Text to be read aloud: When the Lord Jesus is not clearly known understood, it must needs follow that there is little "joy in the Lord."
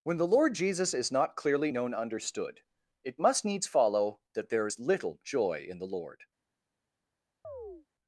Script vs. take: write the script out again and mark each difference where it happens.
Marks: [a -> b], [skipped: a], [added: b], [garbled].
When the Lord Jesus is not clearly known understood, it must needs follow that there is little "joy in the Lord."